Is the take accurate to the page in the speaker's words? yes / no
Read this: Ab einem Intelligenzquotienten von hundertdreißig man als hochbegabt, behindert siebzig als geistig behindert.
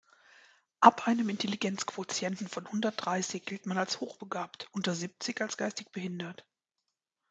no